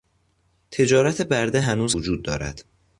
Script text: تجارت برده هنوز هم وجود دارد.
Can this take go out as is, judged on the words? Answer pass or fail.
fail